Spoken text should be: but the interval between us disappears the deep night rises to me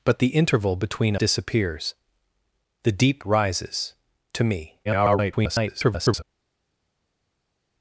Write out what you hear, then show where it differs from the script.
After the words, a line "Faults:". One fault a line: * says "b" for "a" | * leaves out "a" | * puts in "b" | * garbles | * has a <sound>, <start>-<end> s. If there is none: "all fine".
but the interval between disappears the deep rises to me [garbled]
Faults:
* leaves out "us"
* leaves out "night"
* garbles